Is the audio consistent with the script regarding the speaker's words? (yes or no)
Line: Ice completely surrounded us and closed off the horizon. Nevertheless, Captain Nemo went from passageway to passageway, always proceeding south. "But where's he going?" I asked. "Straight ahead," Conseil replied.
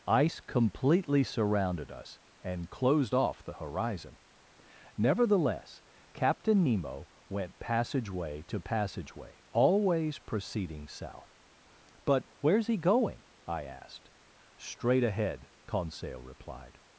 no